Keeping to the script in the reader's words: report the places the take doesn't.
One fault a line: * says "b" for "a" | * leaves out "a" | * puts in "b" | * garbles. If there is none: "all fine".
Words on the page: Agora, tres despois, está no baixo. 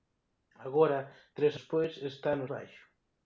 all fine